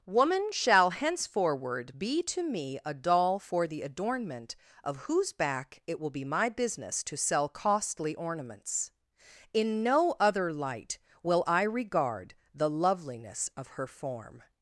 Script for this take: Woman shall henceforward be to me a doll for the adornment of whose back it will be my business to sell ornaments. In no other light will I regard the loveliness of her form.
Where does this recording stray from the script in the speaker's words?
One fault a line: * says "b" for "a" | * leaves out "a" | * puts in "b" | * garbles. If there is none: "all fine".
* puts in "costly"